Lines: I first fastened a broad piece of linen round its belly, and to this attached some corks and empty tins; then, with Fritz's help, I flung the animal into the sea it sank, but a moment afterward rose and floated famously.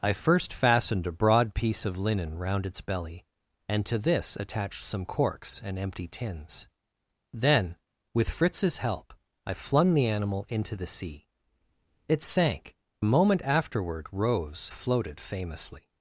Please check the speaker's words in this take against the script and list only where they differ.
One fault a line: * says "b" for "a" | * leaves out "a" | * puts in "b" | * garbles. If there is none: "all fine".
* leaves out "but"
* leaves out "and"